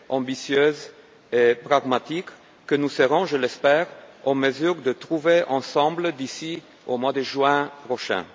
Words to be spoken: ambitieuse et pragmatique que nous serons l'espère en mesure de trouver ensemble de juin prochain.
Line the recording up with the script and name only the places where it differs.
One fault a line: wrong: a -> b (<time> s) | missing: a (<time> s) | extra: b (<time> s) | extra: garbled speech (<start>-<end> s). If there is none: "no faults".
extra: je (3.2 s)
extra: d'ici au mois (6.1 s)